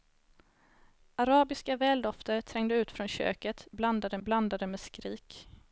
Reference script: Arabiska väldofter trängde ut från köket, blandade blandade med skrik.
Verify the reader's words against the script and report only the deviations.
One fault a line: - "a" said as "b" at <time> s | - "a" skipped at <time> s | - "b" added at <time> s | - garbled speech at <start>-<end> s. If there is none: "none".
none